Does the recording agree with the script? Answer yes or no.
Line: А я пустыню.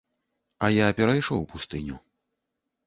no